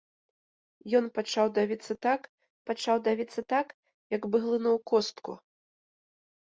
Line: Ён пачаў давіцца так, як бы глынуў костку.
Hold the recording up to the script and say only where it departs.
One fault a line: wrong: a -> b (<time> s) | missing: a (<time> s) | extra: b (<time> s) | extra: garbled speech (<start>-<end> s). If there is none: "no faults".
extra: пачаў давіцца так (2.7 s)